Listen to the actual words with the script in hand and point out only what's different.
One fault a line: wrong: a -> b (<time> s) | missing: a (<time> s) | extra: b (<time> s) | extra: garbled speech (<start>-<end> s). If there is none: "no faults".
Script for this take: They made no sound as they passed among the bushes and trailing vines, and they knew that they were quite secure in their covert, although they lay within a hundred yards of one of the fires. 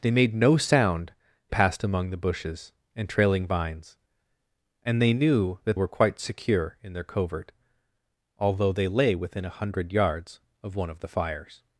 missing: as they (1.1 s)
missing: they (5.8 s)